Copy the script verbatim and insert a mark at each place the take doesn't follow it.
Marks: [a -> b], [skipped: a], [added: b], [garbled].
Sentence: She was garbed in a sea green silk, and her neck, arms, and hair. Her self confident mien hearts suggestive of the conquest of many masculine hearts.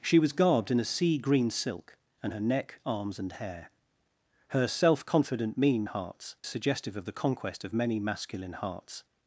She was garbed in a sea green silk, and her neck, arms, and hair. Her self confident mien hearts suggestive of the conquest of many masculine hearts.